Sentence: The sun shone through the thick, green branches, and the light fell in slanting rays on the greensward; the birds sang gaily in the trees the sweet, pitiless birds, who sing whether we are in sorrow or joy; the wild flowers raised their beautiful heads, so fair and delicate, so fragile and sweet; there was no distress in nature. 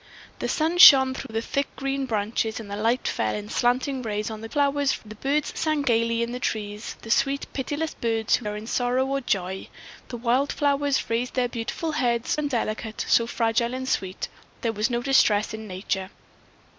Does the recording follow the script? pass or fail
fail